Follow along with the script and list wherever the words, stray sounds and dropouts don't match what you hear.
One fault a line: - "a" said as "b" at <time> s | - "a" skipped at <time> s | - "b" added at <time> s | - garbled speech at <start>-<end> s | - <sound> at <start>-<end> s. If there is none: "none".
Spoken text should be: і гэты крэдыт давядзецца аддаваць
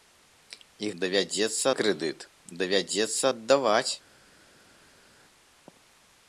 - "гэты" said as "давядзецца" at 1.0 s